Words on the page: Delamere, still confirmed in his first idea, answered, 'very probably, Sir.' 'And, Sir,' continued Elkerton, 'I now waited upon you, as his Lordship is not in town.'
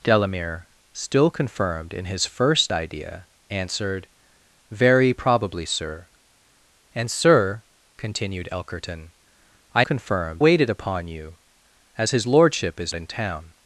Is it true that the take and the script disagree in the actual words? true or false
true